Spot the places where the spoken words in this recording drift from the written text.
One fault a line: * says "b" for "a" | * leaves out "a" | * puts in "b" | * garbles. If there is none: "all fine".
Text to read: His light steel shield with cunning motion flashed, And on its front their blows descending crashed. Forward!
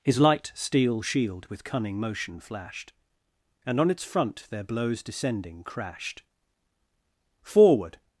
all fine